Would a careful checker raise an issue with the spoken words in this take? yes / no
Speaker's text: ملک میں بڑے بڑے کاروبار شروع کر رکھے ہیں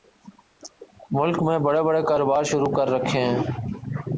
no